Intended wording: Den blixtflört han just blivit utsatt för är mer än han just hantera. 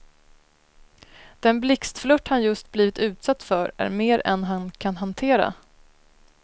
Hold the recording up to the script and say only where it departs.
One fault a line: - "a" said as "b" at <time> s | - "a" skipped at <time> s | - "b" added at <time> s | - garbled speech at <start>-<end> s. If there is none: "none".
- "just" said as "kan" at 4.7 s